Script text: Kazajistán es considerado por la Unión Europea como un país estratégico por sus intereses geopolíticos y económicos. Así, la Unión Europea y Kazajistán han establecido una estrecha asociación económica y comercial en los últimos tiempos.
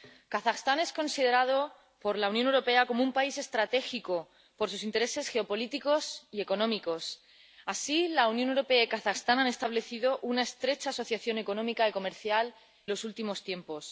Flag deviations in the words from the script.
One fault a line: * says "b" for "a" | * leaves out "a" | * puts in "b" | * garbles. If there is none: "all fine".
* leaves out "en"